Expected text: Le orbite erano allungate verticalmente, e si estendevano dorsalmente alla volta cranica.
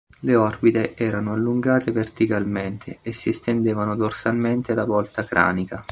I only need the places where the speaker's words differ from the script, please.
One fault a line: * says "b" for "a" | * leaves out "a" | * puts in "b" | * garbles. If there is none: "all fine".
all fine